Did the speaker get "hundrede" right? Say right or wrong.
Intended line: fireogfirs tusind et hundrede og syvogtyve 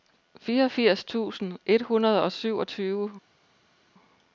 right